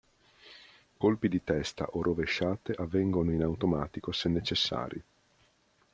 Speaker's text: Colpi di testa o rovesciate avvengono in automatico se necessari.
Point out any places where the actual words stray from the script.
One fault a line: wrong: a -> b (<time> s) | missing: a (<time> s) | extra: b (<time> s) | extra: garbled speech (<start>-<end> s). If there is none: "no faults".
no faults